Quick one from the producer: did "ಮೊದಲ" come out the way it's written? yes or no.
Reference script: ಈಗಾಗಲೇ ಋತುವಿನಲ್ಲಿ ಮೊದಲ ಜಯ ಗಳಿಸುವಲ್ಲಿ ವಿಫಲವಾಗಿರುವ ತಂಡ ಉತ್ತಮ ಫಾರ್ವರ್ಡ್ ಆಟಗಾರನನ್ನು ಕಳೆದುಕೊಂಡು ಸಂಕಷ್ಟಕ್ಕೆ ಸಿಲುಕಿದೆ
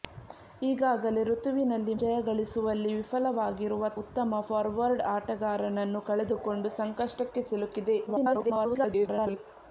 no